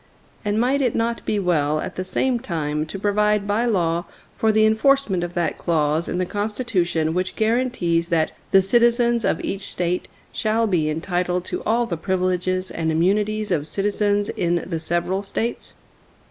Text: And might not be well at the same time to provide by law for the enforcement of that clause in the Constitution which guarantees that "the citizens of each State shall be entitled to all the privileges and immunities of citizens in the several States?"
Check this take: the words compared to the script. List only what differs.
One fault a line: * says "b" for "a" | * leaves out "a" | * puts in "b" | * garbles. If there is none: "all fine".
* puts in "it"